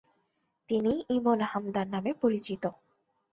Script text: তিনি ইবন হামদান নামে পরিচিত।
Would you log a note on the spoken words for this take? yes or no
no